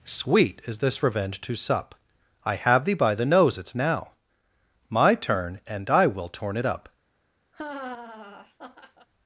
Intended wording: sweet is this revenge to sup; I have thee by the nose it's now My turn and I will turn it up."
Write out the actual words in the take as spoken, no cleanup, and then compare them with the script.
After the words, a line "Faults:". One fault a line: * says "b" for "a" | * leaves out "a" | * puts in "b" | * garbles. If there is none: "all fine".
sweet is this revenge to sup; I have thee by the nose it's now My turn and I will torn it up."
Faults:
* says "torn" for "turn"